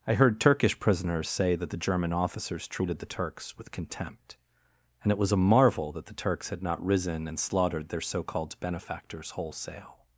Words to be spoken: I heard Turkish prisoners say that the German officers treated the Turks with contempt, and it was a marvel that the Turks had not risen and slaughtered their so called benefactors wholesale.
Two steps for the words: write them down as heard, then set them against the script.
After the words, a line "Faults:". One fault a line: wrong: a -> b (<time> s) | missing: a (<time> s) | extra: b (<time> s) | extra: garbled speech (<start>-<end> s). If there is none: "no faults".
I heard Turkish prisoners say that the German officers treated the Turks with contempt, and it was a marvel that the Turks had not risen and slaughtered their so called benefactors wholesale.
Faults:
no faults